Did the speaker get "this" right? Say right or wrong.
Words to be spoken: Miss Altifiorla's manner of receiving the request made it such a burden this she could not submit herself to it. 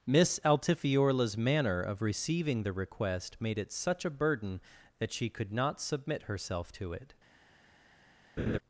wrong